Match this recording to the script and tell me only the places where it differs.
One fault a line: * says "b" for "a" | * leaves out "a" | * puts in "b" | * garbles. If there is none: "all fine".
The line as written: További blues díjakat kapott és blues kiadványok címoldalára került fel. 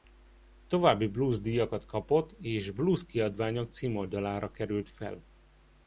all fine